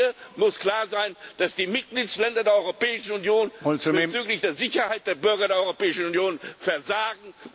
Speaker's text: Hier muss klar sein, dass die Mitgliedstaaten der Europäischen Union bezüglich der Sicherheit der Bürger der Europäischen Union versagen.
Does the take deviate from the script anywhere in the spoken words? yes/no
no